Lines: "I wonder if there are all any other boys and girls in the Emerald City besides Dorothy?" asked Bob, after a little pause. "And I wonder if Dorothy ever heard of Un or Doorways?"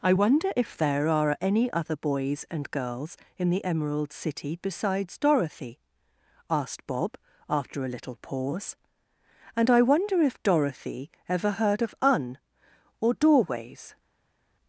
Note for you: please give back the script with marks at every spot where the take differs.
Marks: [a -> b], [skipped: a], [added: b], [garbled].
"I wonder if there are [skipped: all] any other boys and girls in the Emerald City besides Dorothy?" asked Bob, after a little pause. "And I wonder if Dorothy ever heard of Un or Doorways?"